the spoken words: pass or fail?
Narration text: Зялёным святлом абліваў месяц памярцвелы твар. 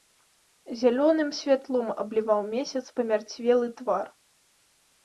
pass